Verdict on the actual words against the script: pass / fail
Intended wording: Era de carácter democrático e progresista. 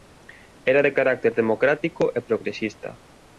pass